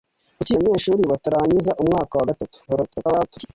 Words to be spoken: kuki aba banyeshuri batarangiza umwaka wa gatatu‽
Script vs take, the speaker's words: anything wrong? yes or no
yes